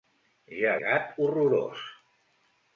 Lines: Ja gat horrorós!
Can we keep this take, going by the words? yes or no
yes